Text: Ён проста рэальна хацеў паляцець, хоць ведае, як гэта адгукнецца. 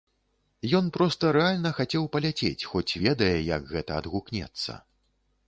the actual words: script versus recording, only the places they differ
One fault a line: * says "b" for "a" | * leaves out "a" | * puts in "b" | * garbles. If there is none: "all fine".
all fine